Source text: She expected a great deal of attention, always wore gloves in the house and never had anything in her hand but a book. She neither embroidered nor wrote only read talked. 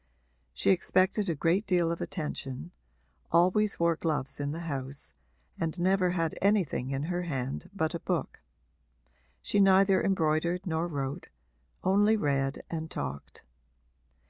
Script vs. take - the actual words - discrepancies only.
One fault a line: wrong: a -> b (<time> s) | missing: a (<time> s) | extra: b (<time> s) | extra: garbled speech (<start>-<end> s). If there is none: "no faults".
extra: and (12.7 s)